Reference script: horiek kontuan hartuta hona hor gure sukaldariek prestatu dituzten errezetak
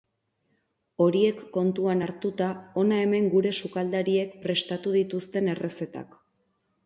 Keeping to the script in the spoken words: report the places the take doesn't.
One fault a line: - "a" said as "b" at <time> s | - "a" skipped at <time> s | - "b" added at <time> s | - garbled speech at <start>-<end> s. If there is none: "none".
- "hor" said as "hemen" at 3.1 s